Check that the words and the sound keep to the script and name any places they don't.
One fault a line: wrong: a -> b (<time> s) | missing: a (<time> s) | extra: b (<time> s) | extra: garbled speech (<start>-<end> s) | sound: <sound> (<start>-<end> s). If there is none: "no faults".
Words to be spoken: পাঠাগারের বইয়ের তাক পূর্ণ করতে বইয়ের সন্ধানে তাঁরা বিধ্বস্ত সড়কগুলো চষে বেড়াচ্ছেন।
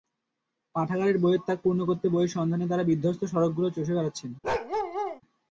sound: bark (4.4-5.2 s)